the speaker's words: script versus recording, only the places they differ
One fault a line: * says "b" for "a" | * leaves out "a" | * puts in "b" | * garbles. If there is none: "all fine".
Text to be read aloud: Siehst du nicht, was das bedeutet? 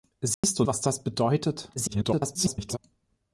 * leaves out "nicht"
* garbles